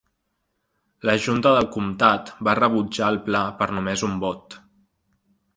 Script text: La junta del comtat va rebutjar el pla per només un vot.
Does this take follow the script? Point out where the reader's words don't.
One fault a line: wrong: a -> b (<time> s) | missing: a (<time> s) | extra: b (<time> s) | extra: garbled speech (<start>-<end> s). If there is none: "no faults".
no faults